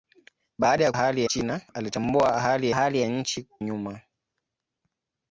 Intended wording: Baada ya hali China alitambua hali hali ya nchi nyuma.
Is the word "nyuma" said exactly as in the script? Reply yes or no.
yes